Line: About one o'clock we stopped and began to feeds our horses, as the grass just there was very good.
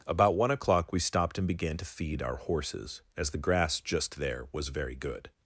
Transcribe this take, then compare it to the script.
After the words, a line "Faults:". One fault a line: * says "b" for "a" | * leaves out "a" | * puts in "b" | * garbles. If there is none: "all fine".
About one o'clock we stopped and began to feed our horses, as the grass just there was very good.
Faults:
* says "feed" for "feeds"